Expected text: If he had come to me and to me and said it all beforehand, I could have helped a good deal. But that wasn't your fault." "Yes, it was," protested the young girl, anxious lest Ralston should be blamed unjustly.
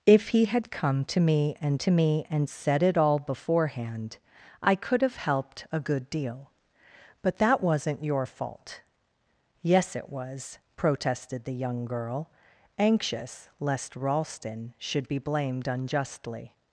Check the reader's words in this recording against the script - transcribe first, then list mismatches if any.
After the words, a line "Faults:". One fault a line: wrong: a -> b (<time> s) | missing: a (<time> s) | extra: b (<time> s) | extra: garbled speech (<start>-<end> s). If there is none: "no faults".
If he had come to me and to me and said it all beforehand, I could have helped a good deal. But that wasn't your fault." "Yes, it was," protested the young girl, anxious lest Ralston should be blamed unjustly.
Faults:
no faults